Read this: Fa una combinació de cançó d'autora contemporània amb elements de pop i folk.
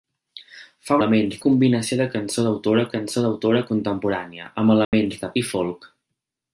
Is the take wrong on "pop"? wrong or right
wrong